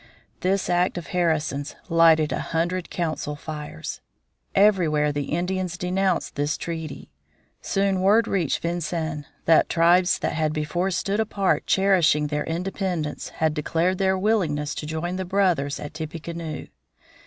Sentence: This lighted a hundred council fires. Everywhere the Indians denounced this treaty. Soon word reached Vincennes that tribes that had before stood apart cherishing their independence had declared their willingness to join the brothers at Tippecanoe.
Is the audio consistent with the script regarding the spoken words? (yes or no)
no